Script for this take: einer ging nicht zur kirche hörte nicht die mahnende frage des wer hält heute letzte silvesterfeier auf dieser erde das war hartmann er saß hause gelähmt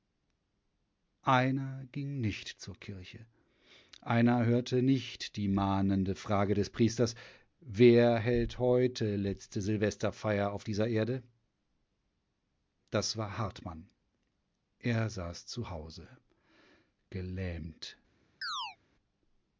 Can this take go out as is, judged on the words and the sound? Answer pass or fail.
fail